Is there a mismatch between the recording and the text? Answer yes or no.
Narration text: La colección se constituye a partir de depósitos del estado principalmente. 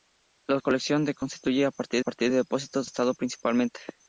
yes